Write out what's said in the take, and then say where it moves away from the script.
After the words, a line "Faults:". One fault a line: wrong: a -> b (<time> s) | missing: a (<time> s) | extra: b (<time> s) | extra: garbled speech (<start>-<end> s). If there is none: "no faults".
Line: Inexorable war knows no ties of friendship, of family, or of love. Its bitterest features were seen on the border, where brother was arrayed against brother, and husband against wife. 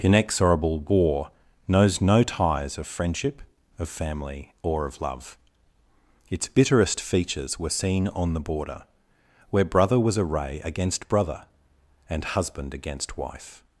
Inexorable war knows no ties of friendship, of family, or of love. Its bitterest features were seen on the border, where brother was array against brother, and husband against wife.
Faults:
wrong: arrayed -> array (10.2 s)